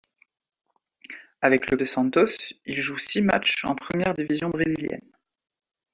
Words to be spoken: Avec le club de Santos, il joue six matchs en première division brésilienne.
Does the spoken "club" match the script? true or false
false